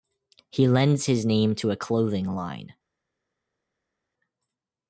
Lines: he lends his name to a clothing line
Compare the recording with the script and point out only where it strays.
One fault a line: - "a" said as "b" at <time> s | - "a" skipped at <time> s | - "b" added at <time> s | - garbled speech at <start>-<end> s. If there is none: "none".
none